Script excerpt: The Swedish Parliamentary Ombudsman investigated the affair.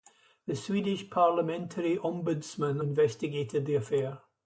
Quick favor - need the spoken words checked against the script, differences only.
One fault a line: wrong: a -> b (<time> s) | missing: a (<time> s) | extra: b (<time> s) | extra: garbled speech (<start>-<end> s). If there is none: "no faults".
no faults